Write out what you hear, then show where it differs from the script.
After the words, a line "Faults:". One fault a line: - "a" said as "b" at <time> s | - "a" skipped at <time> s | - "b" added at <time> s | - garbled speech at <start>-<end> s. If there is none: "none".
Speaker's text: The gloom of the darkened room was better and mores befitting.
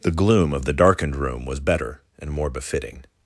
The gloom of the darkened room was better and more befitting.
Faults:
- "mores" said as "more" at 2.3 s